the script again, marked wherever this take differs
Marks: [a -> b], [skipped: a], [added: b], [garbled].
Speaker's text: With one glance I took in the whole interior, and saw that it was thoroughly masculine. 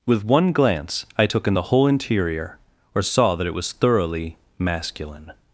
With one glance I took in the whole interior, [and -> or] saw that it was thoroughly masculine.